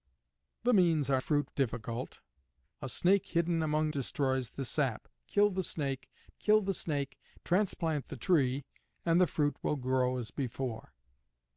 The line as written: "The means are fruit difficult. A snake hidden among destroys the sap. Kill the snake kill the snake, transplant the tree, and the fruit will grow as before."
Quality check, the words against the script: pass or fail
pass